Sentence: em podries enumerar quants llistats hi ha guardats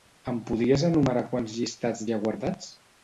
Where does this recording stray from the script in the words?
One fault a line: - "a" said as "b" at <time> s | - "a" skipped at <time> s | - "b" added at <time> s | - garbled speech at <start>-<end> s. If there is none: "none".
none